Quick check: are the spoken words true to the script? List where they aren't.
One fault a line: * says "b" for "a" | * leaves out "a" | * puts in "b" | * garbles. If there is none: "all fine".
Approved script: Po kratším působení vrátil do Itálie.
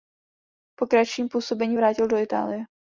all fine